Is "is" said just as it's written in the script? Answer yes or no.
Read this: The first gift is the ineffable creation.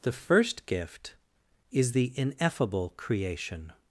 yes